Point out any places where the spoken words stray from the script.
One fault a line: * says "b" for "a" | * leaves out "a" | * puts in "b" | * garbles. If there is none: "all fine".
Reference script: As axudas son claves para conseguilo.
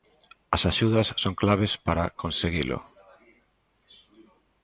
all fine